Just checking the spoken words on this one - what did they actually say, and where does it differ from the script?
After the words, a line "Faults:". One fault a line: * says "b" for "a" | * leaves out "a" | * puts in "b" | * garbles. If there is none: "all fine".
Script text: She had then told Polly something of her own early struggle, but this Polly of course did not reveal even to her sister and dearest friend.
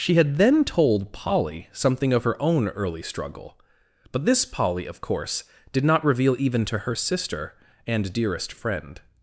She had then told Polly something of her own early struggle, but this Polly of course did not reveal even to her sister and dearest friend.
Faults:
all fine